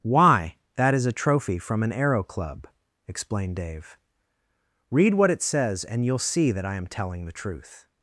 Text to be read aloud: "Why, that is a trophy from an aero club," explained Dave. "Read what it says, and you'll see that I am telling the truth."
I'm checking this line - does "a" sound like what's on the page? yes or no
yes